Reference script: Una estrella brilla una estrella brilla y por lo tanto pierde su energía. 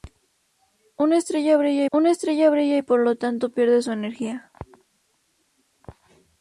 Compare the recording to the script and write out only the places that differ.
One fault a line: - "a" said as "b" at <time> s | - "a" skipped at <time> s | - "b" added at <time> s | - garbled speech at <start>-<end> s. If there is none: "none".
none